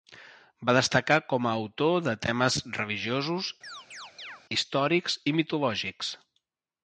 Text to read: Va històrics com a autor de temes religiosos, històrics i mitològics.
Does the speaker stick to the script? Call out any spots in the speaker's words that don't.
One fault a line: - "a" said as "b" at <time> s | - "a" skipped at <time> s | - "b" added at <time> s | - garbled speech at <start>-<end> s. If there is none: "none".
- "històrics" said as "destacar" at 0.8 s